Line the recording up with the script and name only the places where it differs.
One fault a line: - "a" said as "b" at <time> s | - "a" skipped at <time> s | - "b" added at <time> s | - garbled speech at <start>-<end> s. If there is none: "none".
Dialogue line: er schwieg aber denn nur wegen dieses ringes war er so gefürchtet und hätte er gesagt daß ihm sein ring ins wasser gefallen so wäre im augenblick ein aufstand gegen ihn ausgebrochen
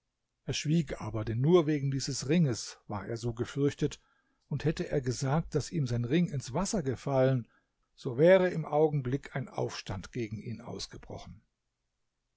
none